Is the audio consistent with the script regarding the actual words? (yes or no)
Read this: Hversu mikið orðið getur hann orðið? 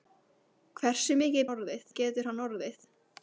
yes